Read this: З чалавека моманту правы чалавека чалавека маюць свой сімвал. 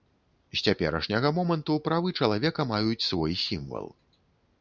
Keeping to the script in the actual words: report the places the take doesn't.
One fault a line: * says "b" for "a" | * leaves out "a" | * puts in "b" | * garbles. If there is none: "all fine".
* says "цяперашняга" for "чалавека"
* leaves out "чалавека"